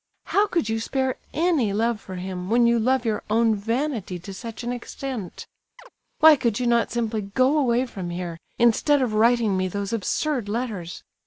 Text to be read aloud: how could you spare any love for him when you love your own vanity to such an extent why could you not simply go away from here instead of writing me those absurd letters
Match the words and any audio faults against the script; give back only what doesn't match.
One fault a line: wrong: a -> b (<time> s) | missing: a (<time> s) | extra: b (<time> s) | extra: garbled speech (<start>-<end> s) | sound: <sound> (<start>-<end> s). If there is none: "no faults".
sound: chirp (5.8-5.9 s)